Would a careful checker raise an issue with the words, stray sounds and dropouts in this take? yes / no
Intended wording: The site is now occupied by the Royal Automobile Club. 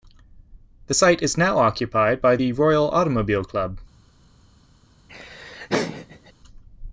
yes